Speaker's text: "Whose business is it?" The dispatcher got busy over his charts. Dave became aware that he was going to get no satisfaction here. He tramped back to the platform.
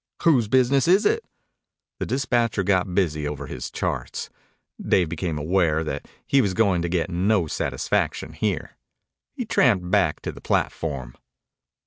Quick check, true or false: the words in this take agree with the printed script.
true